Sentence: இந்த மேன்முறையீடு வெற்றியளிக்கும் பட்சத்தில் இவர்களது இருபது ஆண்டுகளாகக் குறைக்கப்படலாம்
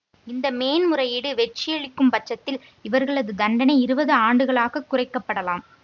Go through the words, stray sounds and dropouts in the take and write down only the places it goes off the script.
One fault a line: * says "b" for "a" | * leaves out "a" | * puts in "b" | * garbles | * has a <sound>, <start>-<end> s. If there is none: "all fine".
* puts in "தண்டனை"